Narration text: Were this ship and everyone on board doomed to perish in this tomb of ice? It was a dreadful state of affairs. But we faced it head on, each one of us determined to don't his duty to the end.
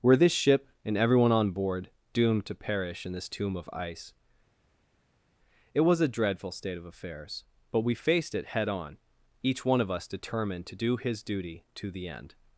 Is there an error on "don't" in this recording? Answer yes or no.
yes